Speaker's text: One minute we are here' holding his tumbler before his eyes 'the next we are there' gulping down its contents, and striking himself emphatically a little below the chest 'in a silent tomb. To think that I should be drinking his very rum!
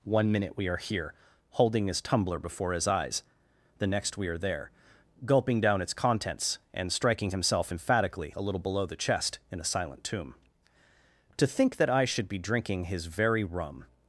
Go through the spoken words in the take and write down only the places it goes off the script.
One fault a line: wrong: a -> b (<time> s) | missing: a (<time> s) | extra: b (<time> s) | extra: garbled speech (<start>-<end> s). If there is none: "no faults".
no faults